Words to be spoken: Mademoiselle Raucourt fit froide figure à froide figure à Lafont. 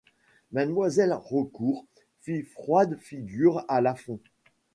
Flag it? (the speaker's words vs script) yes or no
yes